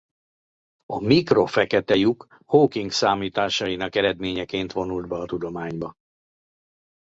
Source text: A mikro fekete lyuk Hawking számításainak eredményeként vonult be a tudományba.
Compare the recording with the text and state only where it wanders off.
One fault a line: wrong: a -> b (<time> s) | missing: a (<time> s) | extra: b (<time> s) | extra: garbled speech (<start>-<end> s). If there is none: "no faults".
no faults